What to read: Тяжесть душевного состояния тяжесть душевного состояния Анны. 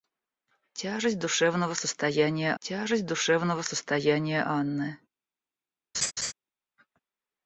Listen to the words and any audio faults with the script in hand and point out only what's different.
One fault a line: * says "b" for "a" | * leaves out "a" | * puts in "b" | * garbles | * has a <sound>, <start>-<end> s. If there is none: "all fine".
* has a laugh, 5.9-6.3 s